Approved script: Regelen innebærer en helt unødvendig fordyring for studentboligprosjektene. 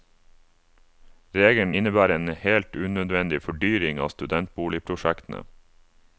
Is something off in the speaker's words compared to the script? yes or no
yes